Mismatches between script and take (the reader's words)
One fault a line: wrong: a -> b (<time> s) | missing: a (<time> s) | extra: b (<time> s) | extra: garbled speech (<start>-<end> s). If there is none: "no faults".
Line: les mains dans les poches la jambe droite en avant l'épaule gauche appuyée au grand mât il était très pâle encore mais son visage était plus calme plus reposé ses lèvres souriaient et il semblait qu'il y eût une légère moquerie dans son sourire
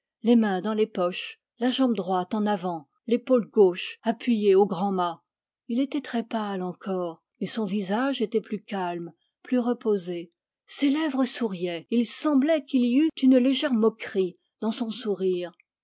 no faults